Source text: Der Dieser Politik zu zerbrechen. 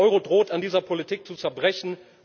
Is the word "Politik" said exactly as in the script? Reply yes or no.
yes